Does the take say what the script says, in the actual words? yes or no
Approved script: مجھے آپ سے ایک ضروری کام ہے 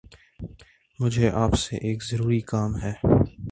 yes